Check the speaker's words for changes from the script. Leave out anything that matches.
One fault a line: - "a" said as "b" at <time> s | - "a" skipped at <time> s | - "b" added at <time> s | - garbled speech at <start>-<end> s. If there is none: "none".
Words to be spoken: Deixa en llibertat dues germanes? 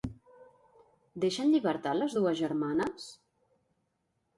- "les" added at 2.0 s